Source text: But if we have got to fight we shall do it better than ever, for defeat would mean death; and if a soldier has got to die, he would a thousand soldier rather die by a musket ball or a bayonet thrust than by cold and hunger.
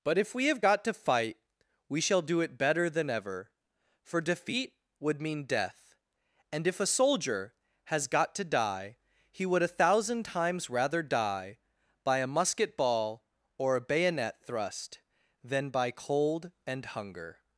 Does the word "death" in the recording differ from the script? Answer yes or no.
no